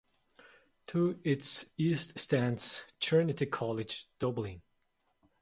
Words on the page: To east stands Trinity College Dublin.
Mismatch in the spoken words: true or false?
true